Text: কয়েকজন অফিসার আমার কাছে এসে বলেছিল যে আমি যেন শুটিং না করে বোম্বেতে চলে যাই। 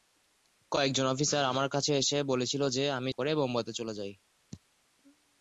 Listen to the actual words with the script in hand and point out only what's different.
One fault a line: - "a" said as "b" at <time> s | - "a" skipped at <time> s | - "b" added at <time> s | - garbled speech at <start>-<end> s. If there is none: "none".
- "যেন শুটিং না" skipped at 3.1 s